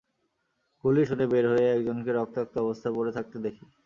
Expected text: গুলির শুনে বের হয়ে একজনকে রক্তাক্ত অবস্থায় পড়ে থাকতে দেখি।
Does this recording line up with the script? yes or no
yes